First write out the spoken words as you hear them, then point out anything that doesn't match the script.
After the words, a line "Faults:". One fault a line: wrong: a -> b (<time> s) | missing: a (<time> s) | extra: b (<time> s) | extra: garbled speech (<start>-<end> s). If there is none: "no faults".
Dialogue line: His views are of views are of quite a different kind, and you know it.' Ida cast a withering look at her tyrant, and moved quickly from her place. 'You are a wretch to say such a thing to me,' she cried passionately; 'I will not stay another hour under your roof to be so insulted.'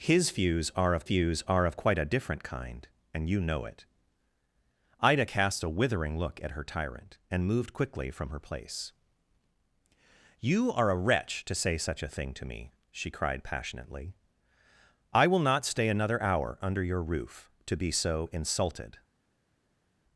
His views are of views are of quite a different kind, and you know it.' Ida cast a withering look at her tyrant, and moved quickly from her place. 'You are a wretch to say such a thing to me,' she cried passionately; 'I will not stay another hour under your roof to be so insulted.'
Faults:
no faults